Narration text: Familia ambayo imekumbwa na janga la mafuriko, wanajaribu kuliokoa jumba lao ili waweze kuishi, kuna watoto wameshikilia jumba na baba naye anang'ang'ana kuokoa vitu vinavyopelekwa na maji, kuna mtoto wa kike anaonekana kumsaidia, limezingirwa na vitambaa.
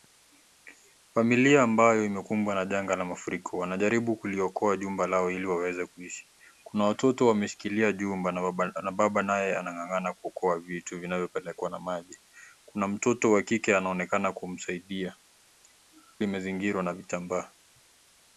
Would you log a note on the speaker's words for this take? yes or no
no